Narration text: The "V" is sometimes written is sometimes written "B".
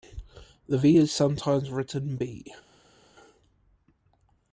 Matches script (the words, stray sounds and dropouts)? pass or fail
fail